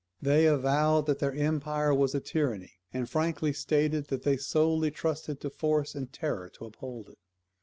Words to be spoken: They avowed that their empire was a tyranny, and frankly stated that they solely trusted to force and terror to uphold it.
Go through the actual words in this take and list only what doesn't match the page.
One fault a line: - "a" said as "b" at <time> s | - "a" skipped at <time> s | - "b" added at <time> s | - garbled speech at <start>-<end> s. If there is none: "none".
none